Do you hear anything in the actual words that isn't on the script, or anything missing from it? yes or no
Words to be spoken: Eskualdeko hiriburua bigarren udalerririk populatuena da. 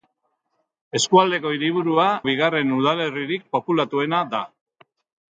no